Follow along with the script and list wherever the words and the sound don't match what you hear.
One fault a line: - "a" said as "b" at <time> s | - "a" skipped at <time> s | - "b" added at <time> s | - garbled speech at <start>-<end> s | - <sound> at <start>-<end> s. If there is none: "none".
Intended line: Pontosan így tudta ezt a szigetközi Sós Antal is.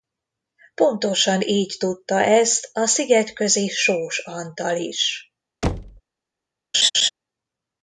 - thud at 5.6-6.0 s
- laugh at 6.7-7.1 s